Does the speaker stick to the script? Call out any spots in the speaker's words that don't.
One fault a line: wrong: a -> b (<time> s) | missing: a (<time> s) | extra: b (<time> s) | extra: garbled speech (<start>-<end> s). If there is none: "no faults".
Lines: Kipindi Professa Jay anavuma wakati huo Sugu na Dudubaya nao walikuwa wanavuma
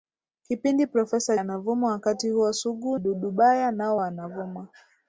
missing: Jay (1.4 s)
missing: na (3.0 s)
missing: walikuwa (4.0 s)